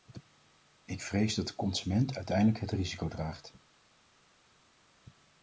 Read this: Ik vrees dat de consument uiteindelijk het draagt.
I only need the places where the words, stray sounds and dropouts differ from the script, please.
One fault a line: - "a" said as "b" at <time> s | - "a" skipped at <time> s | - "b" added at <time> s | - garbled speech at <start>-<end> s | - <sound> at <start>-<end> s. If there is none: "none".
- "risico" added at 2.7 s